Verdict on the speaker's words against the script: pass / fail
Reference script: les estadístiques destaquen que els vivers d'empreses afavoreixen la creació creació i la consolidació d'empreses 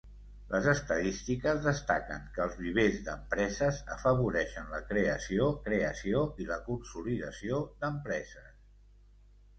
pass